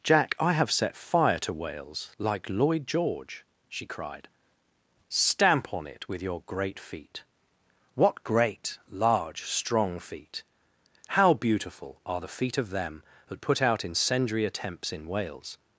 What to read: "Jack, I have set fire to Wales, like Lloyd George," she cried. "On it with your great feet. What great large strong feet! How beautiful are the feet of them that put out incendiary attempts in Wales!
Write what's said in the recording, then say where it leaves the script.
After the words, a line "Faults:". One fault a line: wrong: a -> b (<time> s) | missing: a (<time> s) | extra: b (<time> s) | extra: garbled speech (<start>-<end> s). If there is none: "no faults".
"Jack, I have set fire to Wales, like Lloyd George," she cried. "Stamp on it with your great feet. What great large strong feet! How beautiful are the feet of them that put out incendiary attempts in Wales!
Faults:
extra: Stamp (5.1 s)